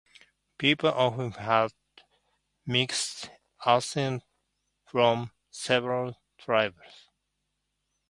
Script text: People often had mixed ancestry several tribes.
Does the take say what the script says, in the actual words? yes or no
no